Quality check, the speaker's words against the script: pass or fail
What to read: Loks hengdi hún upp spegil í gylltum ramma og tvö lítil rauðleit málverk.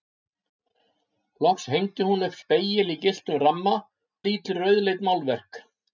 fail